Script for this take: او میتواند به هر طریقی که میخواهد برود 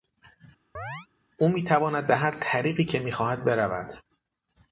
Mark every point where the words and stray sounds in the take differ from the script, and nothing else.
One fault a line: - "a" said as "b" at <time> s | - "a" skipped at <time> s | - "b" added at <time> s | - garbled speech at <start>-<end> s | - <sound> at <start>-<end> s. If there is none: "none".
- chirp at 0.7-1.1 s